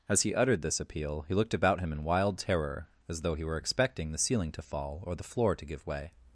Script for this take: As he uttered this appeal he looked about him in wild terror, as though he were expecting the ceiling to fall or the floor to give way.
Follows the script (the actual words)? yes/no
yes